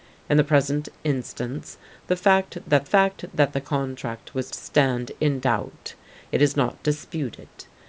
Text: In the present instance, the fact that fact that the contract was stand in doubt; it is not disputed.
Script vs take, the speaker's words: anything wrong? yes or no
no